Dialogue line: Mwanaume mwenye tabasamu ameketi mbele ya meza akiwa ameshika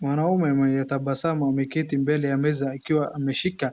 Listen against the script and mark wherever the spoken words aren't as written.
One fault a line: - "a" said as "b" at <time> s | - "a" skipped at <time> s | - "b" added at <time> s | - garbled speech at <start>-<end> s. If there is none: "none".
none